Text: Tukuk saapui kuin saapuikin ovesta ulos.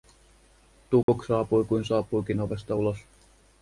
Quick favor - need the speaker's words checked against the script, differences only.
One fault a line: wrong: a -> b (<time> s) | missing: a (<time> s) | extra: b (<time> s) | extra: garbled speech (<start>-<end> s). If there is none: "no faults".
no faults